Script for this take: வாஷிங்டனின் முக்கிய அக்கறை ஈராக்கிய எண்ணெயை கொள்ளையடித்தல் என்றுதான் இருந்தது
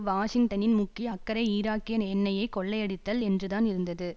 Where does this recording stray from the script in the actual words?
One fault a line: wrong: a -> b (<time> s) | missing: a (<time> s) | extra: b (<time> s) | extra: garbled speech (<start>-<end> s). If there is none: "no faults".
no faults